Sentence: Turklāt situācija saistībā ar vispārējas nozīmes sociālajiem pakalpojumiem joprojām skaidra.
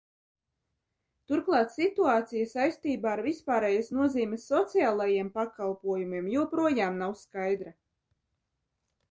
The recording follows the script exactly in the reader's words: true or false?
false